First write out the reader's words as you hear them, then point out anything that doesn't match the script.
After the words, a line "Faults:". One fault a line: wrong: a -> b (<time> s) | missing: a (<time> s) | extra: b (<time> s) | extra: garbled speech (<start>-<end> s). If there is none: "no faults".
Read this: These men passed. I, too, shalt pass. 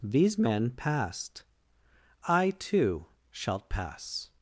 These men passed. I, too, shalt pass.
Faults:
no faults